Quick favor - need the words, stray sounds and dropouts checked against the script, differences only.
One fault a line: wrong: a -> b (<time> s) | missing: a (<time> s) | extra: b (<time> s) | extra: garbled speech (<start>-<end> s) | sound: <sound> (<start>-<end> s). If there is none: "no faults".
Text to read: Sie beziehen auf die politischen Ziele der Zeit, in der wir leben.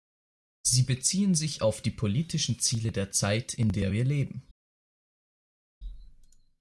extra: sich (1.4 s)